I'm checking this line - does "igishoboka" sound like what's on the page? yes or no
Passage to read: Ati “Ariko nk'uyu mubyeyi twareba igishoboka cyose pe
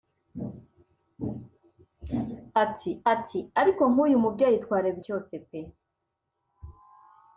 no